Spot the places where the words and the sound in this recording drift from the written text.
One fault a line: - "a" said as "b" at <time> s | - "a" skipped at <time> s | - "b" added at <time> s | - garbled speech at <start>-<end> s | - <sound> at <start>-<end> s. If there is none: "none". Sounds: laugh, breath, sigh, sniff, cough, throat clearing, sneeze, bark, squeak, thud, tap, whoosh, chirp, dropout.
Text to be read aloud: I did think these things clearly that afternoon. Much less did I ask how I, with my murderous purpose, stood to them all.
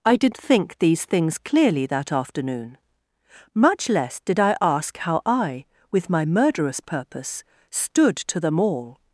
none